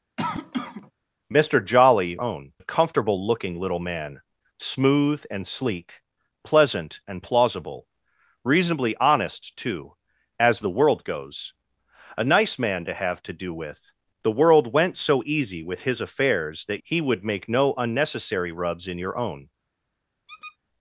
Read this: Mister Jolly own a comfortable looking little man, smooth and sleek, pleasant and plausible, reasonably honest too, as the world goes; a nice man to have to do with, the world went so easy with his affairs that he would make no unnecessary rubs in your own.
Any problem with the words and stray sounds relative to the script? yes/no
yes